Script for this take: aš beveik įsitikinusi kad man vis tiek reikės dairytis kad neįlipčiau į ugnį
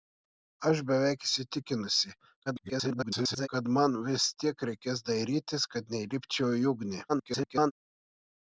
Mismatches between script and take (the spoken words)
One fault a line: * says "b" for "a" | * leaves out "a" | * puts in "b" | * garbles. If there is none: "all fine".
* garbles
* garbles